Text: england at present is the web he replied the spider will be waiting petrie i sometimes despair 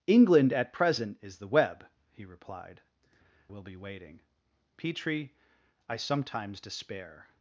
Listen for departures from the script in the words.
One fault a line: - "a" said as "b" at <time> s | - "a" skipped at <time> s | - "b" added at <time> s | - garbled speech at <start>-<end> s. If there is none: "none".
- "the spider" skipped at 2.8 s